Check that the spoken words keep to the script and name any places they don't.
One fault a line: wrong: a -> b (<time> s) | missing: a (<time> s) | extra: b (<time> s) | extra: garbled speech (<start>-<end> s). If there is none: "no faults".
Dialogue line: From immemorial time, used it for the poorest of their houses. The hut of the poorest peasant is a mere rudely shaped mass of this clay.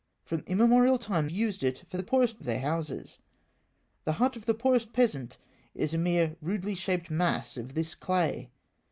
no faults